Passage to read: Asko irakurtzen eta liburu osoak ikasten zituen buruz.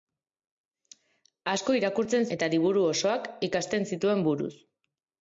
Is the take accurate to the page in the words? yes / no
yes